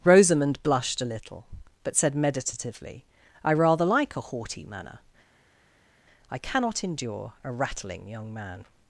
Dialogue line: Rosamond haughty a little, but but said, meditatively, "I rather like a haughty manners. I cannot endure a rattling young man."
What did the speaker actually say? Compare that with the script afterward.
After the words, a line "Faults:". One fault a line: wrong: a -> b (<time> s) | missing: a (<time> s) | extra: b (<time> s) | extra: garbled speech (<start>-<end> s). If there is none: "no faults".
Rosamond blushed a little, but said, meditatively, "I rather like a haughty manner. I cannot endure a rattling young man."
Faults:
wrong: haughty -> blushed (0.6 s)
missing: but (1.9 s)
wrong: manners -> manner (4.7 s)